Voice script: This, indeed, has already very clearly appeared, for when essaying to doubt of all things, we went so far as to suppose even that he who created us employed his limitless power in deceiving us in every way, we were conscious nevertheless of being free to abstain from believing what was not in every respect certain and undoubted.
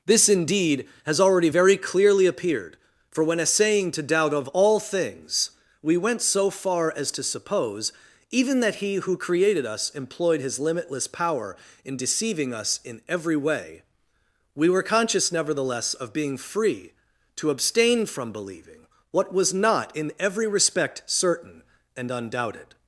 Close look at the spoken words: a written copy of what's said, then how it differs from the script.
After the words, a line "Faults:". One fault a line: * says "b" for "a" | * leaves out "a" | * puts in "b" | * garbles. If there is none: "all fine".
This, indeed, has already very clearly appeared, for when essaying to doubt of all things, we went so far as to suppose even that he who created us employed his limitless power in deceiving us in every way, we were conscious nevertheless of being free to abstain from believing what was not in every respect certain and undoubted.
Faults:
all fine